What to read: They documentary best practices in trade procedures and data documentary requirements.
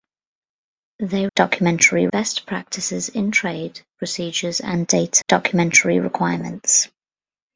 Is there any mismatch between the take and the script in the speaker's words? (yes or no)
no